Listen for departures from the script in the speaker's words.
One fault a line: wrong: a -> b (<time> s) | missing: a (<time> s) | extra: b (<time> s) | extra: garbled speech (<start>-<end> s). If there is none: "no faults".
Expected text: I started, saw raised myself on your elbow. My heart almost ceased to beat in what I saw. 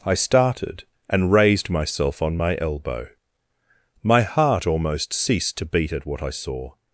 wrong: saw -> and (1.1 s)
wrong: your -> my (2.4 s)
wrong: in -> at (5.9 s)